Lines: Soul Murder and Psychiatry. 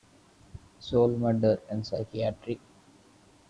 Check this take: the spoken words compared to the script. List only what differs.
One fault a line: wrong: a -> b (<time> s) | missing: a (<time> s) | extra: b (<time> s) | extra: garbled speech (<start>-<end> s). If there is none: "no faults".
no faults